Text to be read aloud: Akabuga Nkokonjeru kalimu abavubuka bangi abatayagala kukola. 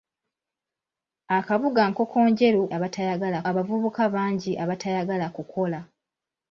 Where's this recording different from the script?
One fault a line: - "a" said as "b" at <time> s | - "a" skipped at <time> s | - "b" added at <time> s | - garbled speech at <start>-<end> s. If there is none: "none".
- "kalimu" said as "abatayagala" at 2.8 s